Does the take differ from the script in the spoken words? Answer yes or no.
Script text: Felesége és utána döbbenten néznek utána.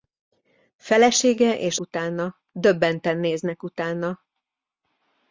no